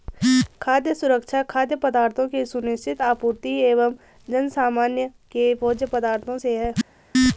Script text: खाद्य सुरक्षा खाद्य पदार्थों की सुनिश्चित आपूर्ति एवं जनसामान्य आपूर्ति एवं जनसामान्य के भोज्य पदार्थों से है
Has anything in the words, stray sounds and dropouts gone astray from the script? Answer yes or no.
yes